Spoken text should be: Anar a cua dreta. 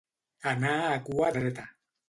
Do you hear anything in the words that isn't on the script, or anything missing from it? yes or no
no